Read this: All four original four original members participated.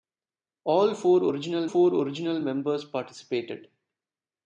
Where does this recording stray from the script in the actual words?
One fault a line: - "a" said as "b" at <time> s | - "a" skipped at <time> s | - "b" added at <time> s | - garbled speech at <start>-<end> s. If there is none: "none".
none